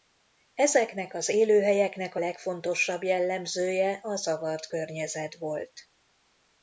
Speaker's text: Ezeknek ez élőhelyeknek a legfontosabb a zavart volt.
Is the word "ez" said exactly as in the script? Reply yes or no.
no